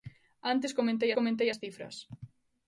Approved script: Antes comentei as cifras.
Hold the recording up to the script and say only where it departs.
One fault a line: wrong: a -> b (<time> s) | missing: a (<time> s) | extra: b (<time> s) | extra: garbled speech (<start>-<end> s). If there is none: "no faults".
extra: comentei (1.2 s)